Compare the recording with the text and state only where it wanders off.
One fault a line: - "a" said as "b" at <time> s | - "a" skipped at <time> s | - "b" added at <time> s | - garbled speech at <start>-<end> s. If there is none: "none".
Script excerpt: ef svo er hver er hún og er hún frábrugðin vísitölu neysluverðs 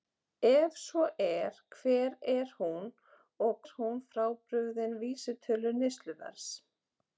none